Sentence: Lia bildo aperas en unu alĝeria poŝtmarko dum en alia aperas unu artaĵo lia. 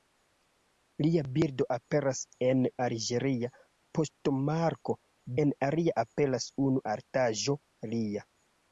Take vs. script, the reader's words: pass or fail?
fail